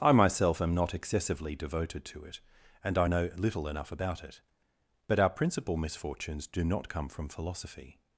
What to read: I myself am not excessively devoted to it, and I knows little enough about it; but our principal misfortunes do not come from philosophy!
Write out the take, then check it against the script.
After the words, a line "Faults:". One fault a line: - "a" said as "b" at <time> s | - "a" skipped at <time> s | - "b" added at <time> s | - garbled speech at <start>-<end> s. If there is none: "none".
I myself am not excessively devoted to it, and I know little enough about it; but our principal misfortunes do not come from philosophy!
Faults:
- "knows" said as "know" at 3.0 s